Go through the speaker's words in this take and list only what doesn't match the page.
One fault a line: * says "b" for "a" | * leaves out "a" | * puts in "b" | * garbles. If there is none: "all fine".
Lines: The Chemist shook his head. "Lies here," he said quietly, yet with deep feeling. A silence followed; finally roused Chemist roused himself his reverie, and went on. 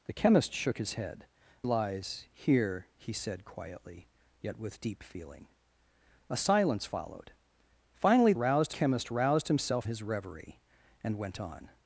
all fine